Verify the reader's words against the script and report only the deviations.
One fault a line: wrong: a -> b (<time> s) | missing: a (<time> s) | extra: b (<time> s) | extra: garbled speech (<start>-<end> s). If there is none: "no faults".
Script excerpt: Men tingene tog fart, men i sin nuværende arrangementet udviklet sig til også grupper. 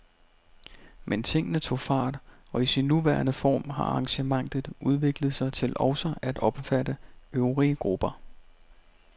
wrong: men -> og (2.5 s)
extra: form har (3.3 s)
extra: at omfatte øvrige (6.2 s)